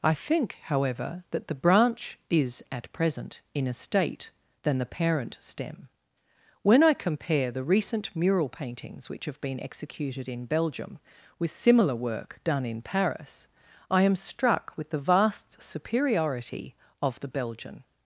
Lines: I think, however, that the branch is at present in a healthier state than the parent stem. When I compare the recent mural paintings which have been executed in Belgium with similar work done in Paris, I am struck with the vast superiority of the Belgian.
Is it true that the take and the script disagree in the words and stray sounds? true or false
true